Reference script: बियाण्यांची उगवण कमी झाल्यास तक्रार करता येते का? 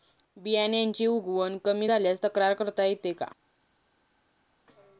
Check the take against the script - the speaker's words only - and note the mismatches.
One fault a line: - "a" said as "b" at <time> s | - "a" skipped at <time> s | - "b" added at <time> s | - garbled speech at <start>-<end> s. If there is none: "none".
none